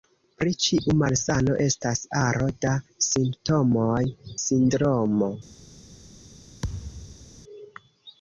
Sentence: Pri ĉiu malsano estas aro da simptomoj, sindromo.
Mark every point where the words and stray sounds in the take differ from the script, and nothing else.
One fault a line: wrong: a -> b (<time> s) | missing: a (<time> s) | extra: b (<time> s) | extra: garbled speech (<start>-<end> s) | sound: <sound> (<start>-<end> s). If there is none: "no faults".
sound: thud (6.6-7.3 s)